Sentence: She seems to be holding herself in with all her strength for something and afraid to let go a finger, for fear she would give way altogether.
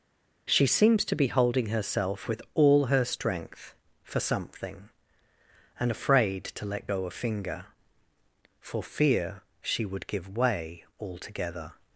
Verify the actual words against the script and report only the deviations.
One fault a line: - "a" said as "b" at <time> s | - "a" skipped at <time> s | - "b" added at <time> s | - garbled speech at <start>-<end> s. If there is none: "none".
- "in" skipped at 2.3 s